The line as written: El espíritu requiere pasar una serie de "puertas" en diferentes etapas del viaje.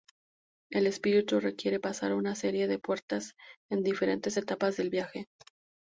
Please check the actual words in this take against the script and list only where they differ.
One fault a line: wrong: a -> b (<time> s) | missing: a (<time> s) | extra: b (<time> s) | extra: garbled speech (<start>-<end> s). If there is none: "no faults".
no faults